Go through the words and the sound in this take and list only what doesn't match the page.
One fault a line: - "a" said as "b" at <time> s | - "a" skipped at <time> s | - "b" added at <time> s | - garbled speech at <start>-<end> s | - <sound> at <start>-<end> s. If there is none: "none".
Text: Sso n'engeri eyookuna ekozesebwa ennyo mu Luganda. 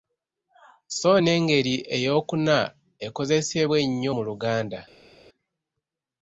none